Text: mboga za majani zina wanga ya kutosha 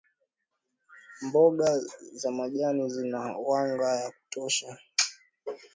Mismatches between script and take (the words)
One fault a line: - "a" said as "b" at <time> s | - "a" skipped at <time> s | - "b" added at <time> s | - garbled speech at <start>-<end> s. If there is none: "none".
none